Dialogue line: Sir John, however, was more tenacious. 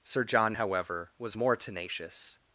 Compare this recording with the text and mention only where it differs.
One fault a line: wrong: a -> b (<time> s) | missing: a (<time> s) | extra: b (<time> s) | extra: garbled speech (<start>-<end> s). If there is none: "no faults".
no faults